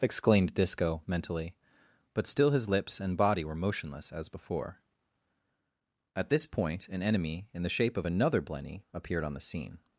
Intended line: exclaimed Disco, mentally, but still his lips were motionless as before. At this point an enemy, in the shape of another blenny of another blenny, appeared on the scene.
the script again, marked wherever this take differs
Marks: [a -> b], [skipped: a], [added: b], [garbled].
exclaimed Disco, mentally, but still his lips [added: and body] were motionless as before. At this point an enemy, in the shape of another blenny [skipped: of another blenny,] appeared on the scene.